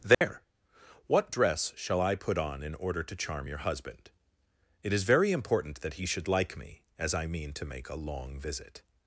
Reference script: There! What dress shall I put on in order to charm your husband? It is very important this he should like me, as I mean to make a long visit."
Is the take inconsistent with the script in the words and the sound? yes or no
yes